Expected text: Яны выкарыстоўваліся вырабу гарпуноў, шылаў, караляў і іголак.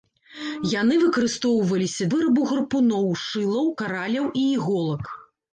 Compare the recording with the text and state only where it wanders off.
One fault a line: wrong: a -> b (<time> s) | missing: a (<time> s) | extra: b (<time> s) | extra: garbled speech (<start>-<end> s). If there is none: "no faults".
no faults